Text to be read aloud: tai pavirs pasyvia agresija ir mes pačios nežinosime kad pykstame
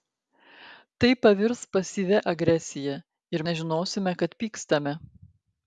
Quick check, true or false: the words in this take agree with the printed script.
false